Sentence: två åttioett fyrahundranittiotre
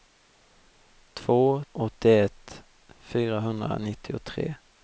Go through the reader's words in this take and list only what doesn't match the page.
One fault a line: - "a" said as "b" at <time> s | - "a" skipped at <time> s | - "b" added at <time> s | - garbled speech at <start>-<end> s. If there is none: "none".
none